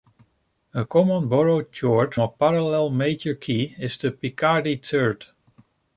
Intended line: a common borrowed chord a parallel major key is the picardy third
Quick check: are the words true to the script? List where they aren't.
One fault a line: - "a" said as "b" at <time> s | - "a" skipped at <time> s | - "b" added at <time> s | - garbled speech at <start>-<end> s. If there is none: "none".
none